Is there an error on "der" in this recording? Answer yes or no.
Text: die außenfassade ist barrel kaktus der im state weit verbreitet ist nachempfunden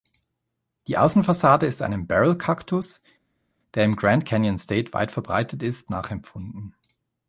no